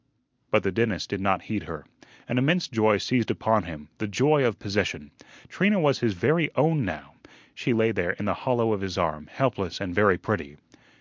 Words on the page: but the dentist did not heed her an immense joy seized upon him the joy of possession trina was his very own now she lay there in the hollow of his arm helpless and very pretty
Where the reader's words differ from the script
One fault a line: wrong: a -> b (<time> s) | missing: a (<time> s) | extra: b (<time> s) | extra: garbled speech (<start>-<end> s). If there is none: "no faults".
no faults